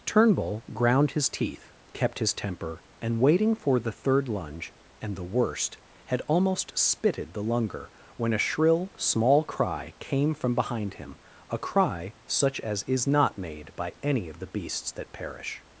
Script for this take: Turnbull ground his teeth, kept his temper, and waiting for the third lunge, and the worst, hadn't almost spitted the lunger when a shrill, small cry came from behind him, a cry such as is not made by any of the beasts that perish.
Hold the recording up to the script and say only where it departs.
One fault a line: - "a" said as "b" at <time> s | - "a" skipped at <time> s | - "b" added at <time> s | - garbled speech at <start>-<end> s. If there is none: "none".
- "hadn't" said as "had" at 6.0 s